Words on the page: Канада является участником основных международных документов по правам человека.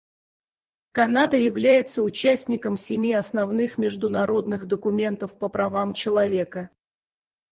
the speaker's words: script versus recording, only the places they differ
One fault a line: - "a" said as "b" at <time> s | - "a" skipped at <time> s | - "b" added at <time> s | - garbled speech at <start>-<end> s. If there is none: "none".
- "семи" added at 2.8 s